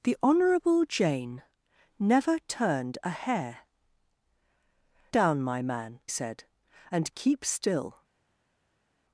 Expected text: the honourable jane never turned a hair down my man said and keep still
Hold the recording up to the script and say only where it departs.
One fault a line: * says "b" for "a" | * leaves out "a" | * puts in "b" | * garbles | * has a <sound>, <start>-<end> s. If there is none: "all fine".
all fine